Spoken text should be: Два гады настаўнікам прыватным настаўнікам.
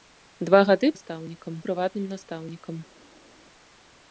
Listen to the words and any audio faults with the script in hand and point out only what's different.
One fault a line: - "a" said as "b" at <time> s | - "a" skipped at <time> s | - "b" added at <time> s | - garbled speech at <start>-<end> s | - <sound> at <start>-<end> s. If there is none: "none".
none